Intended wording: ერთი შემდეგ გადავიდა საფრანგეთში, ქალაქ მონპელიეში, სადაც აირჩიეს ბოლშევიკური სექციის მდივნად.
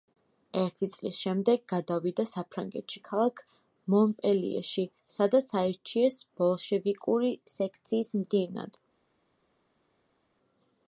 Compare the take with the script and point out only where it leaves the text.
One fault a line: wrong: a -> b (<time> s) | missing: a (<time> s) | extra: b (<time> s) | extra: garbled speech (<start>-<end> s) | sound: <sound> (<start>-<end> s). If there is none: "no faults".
extra: წლის (0.9 s)